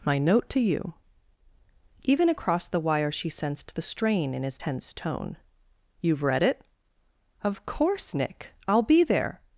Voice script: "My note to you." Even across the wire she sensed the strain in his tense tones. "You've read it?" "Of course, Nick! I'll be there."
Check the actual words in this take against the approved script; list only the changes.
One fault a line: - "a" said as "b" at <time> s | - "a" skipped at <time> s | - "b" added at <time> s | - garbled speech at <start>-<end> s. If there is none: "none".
- "tones" said as "tone" at 4.9 s